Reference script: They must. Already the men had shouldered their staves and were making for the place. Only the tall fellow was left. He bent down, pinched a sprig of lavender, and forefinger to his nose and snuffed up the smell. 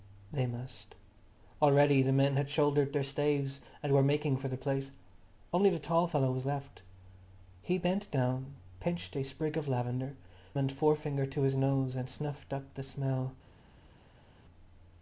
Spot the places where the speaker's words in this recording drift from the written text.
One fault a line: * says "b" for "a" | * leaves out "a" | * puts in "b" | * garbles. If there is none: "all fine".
all fine